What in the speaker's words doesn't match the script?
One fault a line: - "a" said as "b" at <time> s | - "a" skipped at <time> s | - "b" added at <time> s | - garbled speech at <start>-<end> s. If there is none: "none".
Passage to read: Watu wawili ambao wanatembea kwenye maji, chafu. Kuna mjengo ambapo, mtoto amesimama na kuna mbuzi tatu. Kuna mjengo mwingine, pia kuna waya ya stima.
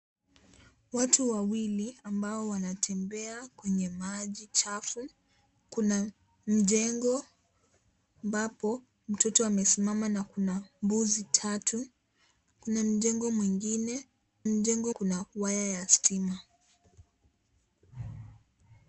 - "pia" said as "mjengo" at 14.5 s